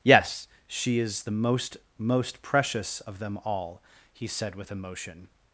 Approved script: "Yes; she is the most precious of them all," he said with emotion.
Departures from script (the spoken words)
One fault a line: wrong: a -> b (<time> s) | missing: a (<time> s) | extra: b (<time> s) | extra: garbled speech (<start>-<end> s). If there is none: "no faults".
extra: most (2.0 s)